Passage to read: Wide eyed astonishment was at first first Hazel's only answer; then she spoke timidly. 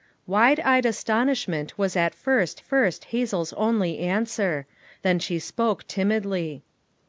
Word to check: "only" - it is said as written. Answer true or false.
true